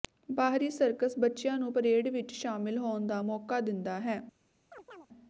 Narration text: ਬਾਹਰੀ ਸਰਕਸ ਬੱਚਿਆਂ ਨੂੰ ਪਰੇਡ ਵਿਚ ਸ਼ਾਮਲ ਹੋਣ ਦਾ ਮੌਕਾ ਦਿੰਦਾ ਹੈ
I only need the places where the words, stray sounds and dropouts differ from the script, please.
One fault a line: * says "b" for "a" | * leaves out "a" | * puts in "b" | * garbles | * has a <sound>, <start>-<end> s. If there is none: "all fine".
* has a chirp, 4.7-5.1 s